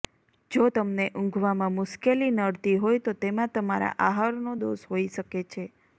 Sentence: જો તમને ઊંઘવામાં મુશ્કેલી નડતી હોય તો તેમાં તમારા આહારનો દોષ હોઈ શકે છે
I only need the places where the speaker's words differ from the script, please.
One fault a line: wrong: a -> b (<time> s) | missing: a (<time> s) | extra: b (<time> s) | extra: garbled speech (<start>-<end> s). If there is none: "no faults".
no faults